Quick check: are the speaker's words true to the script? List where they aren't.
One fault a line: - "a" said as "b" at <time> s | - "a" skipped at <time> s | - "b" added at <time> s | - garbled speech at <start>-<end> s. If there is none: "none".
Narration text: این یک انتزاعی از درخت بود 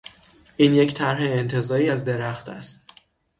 - "طرح" added at 0.9 s
- "بود" said as "است" at 2.5 s